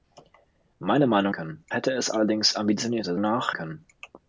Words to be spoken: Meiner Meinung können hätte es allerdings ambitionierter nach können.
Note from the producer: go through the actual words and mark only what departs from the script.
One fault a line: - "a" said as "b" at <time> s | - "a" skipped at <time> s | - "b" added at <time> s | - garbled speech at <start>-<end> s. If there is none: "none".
none